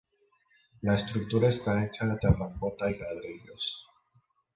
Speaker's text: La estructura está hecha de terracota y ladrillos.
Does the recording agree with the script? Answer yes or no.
yes